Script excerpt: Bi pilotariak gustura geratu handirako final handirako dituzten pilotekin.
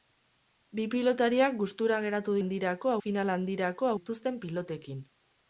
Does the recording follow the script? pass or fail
pass